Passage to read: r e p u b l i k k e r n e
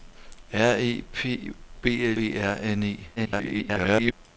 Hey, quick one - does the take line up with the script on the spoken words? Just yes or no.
no